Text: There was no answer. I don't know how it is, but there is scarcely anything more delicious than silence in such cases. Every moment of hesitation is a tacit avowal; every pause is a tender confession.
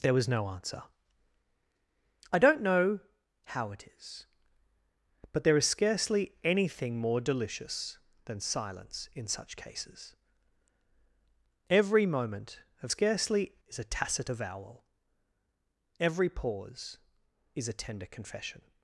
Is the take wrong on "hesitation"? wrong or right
wrong